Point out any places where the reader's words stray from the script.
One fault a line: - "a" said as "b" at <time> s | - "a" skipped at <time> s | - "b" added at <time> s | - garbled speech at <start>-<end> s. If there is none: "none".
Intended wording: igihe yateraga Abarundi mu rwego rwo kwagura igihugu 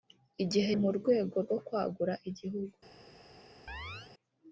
- "yateraga Abarundi" skipped at 0.7 s